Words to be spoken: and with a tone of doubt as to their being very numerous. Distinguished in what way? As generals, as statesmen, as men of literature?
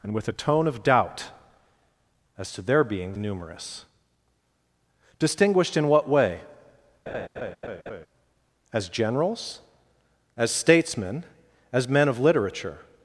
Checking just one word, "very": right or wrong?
wrong